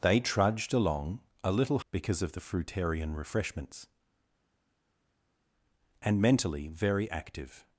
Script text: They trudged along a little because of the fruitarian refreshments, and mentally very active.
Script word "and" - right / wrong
right